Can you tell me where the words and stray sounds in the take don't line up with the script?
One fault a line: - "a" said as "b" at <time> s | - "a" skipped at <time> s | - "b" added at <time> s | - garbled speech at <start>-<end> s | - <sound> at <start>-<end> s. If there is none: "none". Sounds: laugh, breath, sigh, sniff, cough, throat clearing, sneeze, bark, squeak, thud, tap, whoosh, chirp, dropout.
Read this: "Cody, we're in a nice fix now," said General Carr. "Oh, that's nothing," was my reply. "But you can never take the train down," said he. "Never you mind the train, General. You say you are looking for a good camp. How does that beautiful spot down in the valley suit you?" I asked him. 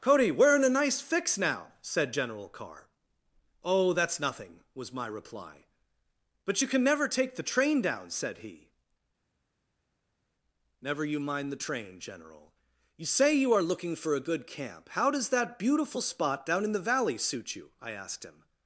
none